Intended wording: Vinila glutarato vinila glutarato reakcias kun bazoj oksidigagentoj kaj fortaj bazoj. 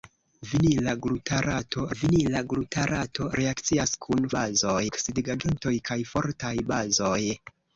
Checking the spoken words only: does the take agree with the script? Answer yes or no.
yes